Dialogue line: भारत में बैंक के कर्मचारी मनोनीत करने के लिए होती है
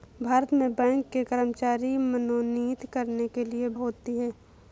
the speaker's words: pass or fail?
pass